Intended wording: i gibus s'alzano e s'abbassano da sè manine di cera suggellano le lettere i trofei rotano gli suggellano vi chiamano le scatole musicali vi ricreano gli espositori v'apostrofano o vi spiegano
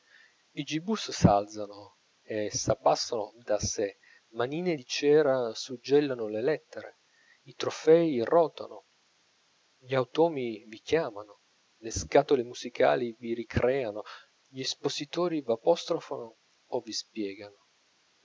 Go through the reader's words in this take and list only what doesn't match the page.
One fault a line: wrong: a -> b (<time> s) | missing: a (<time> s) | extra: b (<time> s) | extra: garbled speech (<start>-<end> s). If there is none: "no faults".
wrong: suggellano -> automi (10.0 s)